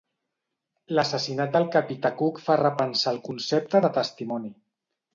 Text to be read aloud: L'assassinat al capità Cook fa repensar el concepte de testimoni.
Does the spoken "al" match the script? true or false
false